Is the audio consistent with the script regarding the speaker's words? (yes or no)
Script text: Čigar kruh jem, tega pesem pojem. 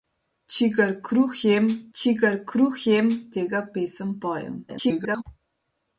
no